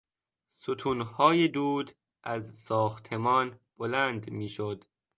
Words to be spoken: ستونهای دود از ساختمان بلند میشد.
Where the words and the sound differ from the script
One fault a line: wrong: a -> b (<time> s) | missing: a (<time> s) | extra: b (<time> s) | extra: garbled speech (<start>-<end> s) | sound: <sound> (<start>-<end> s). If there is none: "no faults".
no faults